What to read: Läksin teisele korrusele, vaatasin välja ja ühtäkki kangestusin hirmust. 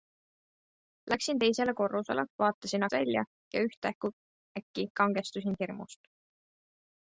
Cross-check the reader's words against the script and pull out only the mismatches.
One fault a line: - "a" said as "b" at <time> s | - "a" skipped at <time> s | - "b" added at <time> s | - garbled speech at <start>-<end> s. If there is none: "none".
none